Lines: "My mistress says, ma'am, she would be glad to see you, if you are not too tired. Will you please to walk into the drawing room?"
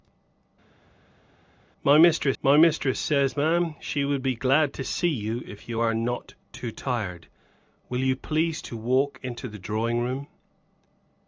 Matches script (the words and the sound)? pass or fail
fail